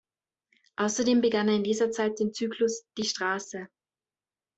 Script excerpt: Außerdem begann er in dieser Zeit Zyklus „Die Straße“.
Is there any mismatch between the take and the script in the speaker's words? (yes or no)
yes